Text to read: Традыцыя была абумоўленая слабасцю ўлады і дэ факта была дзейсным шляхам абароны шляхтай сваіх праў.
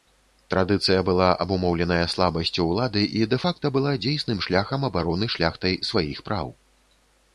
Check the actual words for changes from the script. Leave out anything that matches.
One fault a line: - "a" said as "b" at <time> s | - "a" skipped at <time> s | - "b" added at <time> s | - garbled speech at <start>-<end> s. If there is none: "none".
none